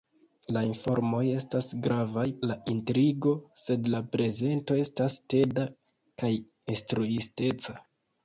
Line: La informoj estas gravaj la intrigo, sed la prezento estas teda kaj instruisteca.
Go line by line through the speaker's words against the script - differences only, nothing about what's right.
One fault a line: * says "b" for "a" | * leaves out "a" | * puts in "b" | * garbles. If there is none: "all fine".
all fine